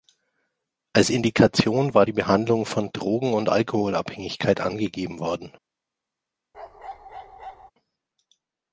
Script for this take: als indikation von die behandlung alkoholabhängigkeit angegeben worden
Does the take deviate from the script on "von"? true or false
true